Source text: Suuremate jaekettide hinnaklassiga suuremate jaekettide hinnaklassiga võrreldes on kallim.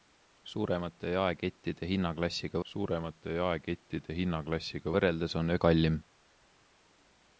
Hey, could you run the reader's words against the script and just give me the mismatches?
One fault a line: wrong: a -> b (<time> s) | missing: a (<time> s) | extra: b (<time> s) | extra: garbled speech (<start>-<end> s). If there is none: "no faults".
no faults